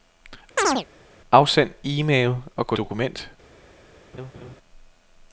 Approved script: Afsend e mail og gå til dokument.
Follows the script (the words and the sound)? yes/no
no